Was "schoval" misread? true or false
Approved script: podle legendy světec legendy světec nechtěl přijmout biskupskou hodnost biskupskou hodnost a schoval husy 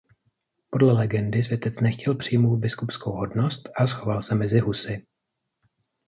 true